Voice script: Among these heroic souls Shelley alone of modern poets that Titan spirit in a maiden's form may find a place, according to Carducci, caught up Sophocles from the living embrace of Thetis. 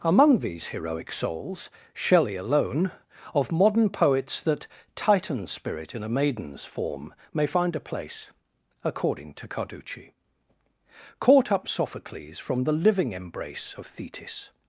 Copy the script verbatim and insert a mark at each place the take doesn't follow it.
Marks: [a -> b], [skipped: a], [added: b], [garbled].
Among these heroic souls Shelley alone of modern poets that Titan spirit in a maiden's form may find a place, according to Carducci, caught up Sophocles from the living embrace of Thetis.